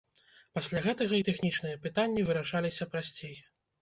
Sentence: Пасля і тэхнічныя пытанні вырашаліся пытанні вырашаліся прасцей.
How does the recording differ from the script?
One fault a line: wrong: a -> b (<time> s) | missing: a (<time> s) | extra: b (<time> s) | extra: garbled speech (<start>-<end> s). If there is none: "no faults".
extra: гэтага (0.8 s)
missing: пытанні вырашаліся (2.9 s)